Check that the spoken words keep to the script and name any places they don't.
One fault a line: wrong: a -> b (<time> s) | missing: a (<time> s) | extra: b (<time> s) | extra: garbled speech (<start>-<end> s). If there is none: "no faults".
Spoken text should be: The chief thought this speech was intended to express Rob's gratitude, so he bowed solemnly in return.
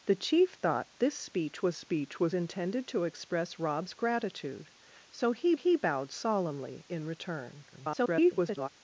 extra: speech was (1.7 s)
extra: he (5.5 s)
extra: garbled speech (7.7-8.7 s)